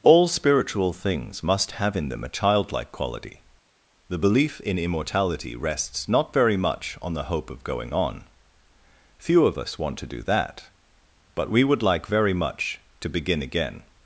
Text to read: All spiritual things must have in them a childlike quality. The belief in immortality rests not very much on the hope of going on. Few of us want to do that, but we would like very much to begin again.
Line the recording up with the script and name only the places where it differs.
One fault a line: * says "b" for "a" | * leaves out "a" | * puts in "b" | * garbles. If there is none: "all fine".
all fine